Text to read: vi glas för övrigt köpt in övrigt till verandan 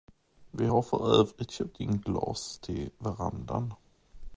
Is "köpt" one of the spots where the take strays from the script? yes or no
no